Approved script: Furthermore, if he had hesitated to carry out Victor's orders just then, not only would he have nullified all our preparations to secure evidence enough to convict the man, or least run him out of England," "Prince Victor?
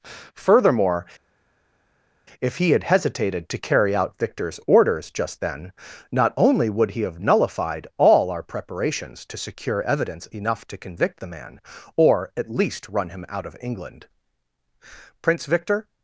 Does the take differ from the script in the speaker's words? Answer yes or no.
yes